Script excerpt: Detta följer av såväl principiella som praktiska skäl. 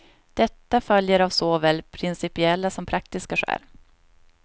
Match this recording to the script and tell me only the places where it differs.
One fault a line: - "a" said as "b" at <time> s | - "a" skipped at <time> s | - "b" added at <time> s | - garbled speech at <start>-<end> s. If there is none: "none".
none